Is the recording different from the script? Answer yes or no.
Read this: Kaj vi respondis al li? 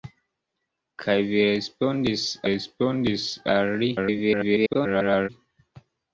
yes